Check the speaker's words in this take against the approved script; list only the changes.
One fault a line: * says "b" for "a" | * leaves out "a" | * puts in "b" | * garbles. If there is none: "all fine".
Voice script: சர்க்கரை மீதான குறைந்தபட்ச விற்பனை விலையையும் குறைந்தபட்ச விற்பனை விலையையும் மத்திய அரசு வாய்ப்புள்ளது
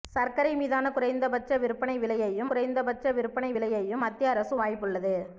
all fine